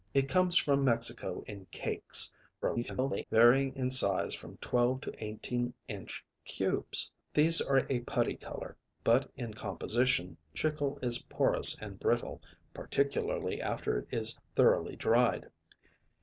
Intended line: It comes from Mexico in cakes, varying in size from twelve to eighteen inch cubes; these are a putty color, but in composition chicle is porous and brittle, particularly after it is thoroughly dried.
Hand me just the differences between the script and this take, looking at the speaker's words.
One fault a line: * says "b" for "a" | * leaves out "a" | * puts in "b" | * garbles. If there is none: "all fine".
* garbles